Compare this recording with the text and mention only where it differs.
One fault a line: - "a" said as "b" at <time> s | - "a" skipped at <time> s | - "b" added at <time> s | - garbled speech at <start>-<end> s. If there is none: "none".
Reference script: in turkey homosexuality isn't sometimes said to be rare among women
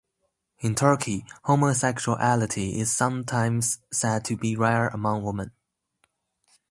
- "isn't" said as "is" at 2.8 s